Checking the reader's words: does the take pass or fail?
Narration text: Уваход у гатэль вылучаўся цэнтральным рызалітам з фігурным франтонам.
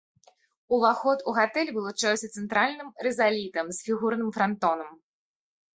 pass